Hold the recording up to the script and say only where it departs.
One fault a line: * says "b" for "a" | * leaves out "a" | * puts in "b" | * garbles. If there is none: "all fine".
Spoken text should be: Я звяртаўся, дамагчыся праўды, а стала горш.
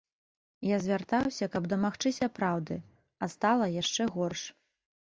* puts in "каб"
* puts in "яшчэ"